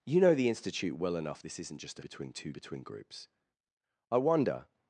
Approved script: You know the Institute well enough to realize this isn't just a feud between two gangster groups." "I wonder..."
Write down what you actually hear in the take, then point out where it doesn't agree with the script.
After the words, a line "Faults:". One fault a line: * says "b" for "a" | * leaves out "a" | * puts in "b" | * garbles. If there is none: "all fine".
You know the Institute well enough this isn't just a between two between groups." "I wonder..."
Faults:
* leaves out "to realize"
* leaves out "feud"
* says "between" for "gangster"